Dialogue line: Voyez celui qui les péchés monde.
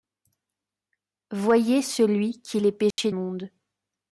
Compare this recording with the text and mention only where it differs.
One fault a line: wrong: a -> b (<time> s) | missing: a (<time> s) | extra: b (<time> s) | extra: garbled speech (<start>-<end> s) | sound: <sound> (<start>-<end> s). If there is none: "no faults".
sound: dropout (2.9-3.0 s)